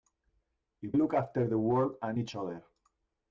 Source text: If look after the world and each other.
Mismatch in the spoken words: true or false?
false